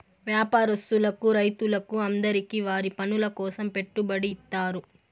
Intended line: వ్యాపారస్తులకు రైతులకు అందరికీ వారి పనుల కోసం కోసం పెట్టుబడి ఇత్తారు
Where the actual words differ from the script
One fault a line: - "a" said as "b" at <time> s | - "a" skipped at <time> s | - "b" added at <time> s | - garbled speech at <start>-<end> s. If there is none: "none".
- "కోసం" skipped at 3.7 s